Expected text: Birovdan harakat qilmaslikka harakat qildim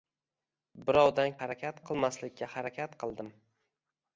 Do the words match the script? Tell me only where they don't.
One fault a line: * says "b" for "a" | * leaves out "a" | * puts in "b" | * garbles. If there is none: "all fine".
all fine